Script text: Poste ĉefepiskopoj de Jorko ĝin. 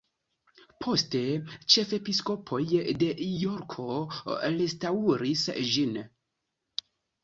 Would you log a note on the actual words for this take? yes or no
yes